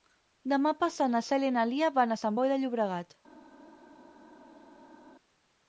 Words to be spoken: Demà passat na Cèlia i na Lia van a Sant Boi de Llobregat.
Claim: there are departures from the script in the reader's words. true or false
false